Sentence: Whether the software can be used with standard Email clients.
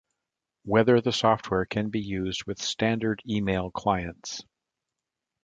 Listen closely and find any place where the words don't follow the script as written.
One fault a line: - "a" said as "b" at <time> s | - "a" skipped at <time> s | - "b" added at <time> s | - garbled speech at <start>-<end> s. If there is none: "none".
none